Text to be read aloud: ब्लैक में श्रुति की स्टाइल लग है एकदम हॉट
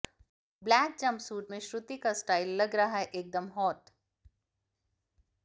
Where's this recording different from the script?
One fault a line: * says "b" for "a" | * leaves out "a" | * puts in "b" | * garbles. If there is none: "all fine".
* puts in "जंपसूट"
* says "का" for "की"
* puts in "रहा"